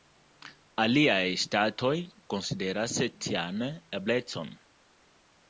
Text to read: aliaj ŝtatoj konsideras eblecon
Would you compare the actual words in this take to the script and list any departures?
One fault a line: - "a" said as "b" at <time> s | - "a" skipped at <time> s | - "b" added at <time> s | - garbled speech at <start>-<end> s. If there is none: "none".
- "tian" added at 3.3 s